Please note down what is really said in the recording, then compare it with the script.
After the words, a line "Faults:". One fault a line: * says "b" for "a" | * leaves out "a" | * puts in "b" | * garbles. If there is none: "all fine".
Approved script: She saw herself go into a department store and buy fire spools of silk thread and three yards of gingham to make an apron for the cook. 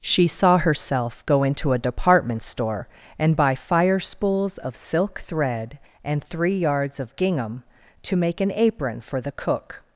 She saw herself go into a department store and buy fire spools of silk thread and three yards of gingham to make an apron for the cook.
Faults:
all fine